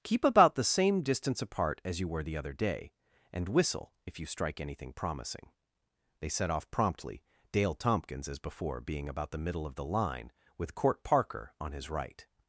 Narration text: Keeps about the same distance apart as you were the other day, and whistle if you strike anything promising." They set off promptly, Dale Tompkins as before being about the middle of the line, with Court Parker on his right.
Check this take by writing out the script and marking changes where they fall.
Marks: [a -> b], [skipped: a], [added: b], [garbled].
[Keeps -> Keep] about the same distance apart as you were the other day, and whistle if you strike anything promising." They set off promptly, Dale Tompkins as before being about the middle of the line, with Court Parker on his right.